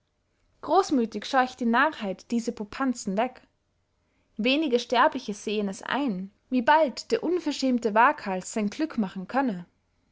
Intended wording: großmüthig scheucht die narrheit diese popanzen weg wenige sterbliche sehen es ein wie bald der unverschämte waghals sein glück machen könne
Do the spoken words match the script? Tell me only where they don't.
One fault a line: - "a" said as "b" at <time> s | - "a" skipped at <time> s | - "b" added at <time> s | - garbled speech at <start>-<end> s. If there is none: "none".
none